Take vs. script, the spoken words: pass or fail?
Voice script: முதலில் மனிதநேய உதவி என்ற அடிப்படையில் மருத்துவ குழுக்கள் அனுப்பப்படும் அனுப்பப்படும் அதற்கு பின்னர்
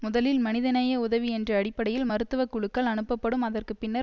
fail